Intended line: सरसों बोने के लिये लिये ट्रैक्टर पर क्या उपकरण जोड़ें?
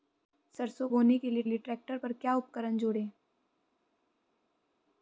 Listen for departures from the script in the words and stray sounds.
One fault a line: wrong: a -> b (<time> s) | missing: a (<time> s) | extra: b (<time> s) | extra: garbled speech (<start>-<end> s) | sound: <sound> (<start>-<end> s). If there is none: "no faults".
no faults